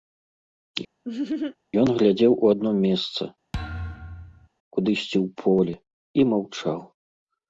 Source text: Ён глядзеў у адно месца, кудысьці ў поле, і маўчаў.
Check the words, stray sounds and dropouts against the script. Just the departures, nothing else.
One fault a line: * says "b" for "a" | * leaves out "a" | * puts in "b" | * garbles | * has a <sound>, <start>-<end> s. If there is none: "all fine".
* has a laugh, 1.0-1.6 s
* has a thud, 3.5-4.5 s